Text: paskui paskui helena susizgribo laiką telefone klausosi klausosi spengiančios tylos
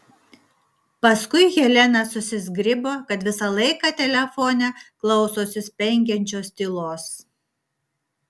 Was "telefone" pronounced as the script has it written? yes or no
yes